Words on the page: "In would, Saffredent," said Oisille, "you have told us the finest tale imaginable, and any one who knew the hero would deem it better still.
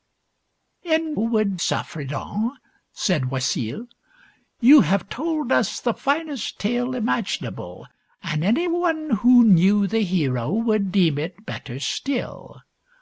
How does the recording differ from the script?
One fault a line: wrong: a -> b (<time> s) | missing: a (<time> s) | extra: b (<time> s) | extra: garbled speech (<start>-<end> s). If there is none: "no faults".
no faults